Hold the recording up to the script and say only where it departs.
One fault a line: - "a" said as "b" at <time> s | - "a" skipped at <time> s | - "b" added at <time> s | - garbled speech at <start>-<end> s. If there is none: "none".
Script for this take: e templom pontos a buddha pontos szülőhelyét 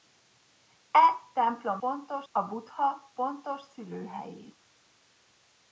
none